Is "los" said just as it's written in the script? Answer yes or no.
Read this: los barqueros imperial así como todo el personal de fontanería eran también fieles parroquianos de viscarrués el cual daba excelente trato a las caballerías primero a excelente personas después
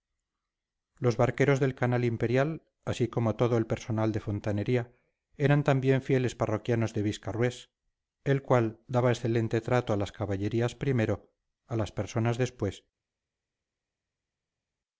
yes